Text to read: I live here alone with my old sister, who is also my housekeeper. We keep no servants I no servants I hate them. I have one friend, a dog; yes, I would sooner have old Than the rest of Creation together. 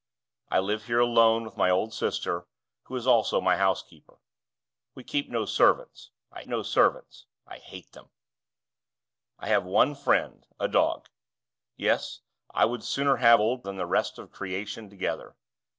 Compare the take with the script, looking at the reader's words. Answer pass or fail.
pass